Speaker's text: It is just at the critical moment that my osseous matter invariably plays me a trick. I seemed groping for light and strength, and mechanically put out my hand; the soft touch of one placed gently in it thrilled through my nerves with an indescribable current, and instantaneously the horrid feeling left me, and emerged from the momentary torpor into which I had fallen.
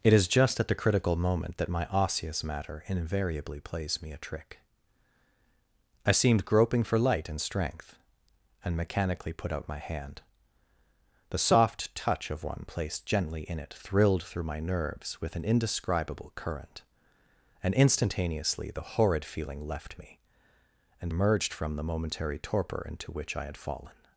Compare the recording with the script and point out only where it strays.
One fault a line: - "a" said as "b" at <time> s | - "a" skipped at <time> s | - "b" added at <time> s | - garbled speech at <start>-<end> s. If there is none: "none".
none